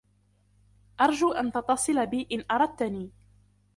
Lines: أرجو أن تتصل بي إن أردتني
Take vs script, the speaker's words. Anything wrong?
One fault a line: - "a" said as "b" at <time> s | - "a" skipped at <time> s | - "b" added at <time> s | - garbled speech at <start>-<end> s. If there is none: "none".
none